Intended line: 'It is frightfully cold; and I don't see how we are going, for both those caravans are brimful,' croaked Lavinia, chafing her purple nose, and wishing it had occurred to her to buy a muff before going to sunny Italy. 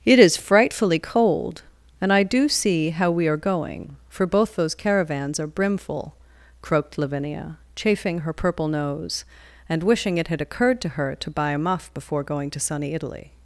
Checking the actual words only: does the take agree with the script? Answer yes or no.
no